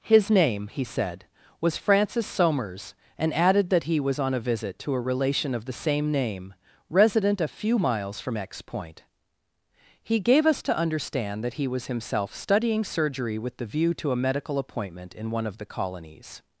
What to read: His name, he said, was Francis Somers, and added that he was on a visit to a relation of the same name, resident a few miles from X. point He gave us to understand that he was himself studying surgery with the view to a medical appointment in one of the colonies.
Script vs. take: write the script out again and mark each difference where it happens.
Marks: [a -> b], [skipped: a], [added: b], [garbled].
His name, he said, was Francis Somers, and added that he was on a visit to a relation of the same name, resident a few miles from X. point He gave us to understand that he was himself studying surgery with the view to a medical appointment in one of the colonies.